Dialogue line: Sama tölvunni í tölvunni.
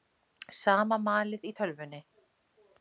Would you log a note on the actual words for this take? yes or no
yes